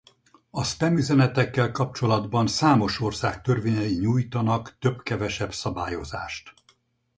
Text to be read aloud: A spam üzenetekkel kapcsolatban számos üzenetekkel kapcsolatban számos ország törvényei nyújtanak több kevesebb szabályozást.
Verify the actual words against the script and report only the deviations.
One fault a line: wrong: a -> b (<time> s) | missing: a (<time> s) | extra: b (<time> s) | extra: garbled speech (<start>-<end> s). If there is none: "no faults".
missing: üzenetekkel kapcsolatban számos (3.0 s)